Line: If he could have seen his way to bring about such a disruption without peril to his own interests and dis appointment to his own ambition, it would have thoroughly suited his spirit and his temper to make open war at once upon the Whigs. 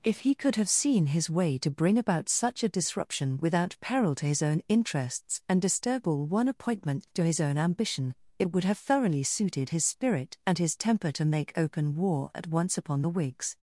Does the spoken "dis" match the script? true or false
false